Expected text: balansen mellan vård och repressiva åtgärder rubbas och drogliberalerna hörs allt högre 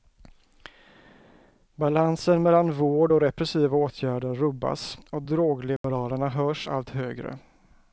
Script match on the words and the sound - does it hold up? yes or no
no